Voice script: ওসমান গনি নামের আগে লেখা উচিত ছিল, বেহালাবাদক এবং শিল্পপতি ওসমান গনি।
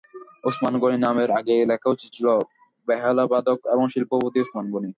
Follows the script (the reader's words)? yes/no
yes